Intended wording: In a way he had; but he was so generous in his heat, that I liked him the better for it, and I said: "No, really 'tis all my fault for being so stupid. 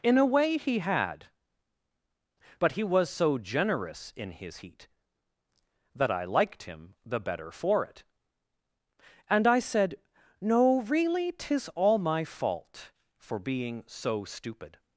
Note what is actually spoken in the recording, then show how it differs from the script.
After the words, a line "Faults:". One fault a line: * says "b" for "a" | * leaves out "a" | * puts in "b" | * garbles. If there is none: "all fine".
In a way he had; but he was so generous in his heat, that I liked him the better for it, and I said: "No, really 'tis all my fault for being so stupid.
Faults:
all fine